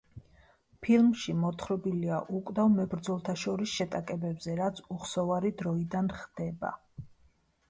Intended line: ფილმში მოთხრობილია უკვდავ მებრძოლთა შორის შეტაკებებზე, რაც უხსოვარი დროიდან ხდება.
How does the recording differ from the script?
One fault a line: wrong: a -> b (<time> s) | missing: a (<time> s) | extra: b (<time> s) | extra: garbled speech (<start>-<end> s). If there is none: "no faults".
no faults